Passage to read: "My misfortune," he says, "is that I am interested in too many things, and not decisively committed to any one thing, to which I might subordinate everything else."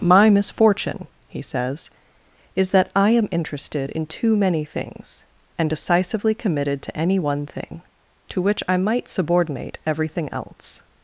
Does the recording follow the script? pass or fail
fail